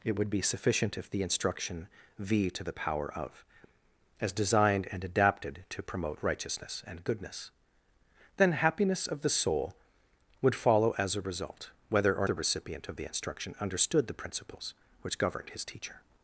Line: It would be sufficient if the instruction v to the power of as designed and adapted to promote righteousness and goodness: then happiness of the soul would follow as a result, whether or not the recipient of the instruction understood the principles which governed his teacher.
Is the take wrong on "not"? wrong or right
wrong